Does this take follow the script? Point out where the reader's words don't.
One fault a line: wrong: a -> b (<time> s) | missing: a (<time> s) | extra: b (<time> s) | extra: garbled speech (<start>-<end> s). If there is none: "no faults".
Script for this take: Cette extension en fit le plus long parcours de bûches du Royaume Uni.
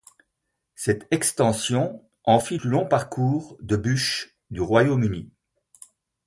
missing: le (2.6 s)